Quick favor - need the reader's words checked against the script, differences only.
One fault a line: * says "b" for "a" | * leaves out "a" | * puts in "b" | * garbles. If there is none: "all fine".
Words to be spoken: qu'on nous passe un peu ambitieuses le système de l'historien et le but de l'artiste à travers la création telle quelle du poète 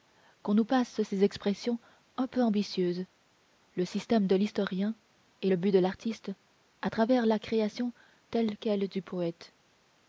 * puts in "ces expressions"